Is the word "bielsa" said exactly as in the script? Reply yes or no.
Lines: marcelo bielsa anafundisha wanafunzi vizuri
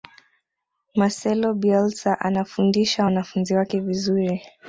yes